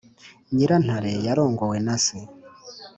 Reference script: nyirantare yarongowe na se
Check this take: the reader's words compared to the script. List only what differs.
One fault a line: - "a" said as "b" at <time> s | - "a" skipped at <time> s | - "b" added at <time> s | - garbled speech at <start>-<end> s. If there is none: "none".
none